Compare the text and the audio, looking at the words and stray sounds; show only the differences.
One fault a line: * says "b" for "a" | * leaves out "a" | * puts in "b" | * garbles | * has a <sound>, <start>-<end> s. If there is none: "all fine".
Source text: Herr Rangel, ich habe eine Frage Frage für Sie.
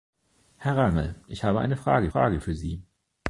all fine